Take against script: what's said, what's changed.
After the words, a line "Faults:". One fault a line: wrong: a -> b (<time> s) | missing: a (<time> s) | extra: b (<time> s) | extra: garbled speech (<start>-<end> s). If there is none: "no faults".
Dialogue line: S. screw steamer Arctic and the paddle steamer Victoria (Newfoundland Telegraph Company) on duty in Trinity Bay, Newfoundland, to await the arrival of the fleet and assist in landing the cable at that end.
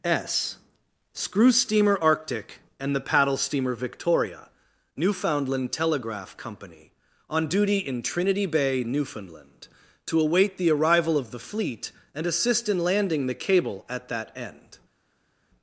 S. screw steamer Arctic and the paddle steamer Victoria (Newfoundland Telegraph Company) on duty in Trinity Bay, Newfoundland, to await the arrival of the fleet and assist in landing the cable at that end.
Faults:
no faults